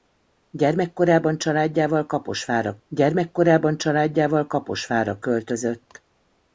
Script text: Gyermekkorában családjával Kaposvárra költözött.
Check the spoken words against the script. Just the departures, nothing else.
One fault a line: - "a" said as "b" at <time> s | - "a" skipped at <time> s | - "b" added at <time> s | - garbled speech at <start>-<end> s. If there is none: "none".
- "gyermekkorában családjával Kaposvárra" added at 2.9 s